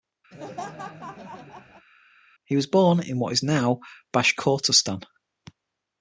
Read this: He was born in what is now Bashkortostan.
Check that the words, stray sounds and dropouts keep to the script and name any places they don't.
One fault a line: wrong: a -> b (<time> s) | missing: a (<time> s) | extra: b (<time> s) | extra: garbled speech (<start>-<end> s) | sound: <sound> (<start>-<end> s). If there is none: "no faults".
sound: laugh (0.3-1.9 s)